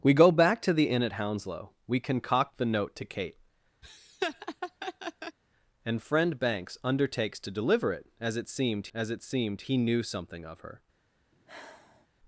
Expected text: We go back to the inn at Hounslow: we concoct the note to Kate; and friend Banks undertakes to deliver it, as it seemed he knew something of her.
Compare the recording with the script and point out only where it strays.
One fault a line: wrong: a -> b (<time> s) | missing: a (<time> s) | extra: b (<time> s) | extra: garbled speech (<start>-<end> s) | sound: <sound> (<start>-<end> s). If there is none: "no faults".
sound: laugh (3.8-5.4 s)
extra: as it seemed (8.9 s)
sound: sigh (11.3-12.1 s)